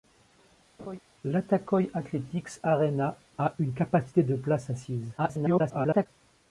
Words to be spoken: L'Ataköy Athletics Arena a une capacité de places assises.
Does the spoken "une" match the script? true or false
true